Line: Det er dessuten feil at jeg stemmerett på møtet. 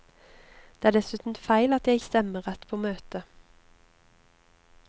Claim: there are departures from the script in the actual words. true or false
false